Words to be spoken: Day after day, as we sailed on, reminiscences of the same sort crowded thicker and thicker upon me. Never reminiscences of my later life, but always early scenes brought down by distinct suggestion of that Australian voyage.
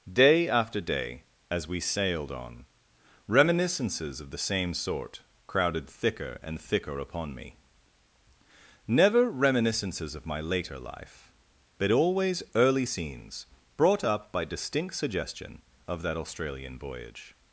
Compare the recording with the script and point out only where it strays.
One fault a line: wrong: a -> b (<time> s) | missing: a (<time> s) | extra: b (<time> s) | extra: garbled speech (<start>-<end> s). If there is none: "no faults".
wrong: down -> up (14.0 s)